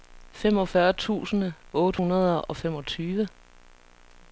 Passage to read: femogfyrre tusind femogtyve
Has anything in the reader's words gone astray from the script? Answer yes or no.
yes